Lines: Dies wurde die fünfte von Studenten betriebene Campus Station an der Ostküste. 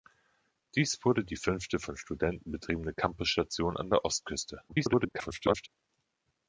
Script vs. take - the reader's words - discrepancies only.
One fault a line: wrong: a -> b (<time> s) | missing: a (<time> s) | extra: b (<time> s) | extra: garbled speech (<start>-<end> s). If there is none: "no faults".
extra: garbled speech (4.7-5.7 s)